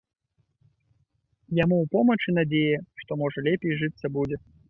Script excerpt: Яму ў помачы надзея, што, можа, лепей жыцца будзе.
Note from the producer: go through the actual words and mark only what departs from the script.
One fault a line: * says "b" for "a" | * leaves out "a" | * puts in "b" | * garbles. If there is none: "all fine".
all fine